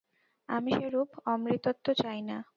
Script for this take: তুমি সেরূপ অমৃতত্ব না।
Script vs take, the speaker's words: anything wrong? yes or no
yes